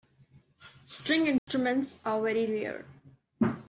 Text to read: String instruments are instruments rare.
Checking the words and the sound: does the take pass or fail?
fail